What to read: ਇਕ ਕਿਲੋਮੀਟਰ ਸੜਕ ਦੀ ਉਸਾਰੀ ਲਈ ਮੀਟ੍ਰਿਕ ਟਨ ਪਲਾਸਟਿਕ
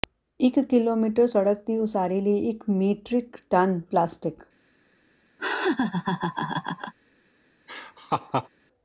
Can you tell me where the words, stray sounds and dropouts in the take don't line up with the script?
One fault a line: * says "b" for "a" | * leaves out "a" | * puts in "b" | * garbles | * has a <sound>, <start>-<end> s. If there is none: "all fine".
* puts in "ਇਕ"
* has a laugh, 5.4-6.9 s
* has a laugh, 7.7-8.5 s